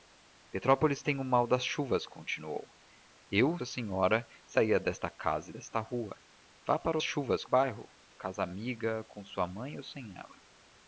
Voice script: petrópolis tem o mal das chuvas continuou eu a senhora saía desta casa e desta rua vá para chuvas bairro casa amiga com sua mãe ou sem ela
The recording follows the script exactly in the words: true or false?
true